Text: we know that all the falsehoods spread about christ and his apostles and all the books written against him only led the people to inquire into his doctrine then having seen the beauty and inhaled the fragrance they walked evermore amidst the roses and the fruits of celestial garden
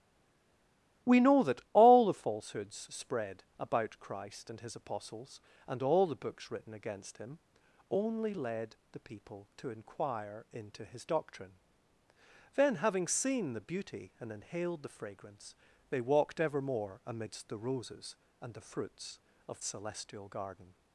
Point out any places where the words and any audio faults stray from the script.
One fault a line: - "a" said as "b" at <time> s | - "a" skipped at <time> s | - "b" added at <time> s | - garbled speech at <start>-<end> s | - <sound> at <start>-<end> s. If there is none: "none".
none